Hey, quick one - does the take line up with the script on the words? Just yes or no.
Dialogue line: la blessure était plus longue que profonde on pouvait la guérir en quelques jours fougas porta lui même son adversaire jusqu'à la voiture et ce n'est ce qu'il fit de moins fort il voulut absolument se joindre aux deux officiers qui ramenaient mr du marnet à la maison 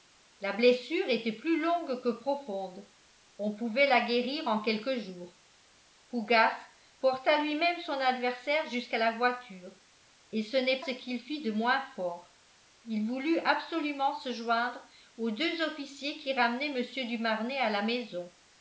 yes